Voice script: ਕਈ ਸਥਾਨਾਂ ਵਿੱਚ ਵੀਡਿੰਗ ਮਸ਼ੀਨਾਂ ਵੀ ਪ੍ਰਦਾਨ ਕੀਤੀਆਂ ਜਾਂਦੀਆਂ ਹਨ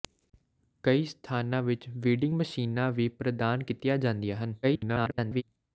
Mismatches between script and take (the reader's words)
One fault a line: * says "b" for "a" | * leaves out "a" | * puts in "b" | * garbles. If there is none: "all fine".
* garbles